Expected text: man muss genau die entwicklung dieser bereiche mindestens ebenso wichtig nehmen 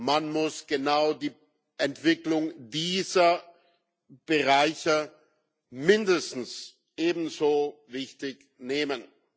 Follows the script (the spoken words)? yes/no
yes